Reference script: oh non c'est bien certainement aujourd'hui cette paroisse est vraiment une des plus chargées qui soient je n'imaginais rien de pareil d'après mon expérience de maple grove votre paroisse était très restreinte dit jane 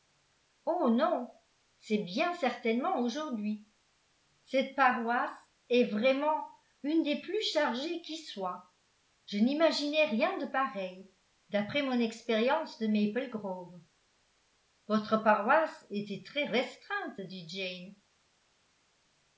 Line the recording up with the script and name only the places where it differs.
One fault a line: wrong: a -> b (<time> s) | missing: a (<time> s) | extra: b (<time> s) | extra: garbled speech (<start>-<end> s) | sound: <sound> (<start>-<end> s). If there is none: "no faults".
no faults